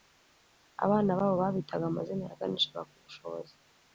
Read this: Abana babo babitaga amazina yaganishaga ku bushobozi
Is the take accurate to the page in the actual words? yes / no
yes